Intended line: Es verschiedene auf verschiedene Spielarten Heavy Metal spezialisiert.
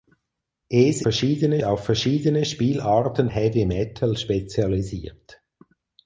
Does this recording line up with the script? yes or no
yes